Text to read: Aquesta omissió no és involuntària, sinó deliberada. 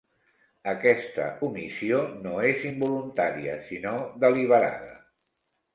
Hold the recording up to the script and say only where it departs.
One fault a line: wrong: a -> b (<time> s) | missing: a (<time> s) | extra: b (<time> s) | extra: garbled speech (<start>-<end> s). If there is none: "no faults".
no faults